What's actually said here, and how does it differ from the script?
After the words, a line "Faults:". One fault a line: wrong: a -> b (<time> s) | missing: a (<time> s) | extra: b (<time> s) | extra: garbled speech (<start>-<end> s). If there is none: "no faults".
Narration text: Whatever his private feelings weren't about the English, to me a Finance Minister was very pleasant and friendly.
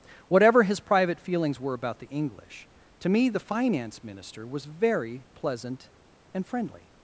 Whatever his private feelings were about the English, to me the Finance Minister was very pleasant and friendly.
Faults:
wrong: weren't -> were (1.6 s)
wrong: a -> the (3.3 s)